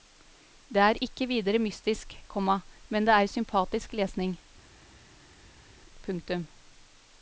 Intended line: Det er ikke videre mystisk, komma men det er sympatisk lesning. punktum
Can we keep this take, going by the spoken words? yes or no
yes